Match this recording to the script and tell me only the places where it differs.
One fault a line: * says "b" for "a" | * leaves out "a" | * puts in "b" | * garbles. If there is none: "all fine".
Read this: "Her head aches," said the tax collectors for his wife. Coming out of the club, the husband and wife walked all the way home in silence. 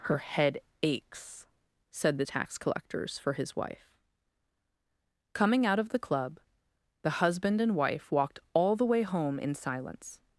all fine